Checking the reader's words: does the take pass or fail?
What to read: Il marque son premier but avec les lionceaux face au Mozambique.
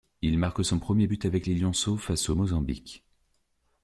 pass